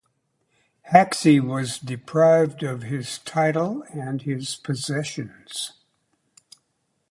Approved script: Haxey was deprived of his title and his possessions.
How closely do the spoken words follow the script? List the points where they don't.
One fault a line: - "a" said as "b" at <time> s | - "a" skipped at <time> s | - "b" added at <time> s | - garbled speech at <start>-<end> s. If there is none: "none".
none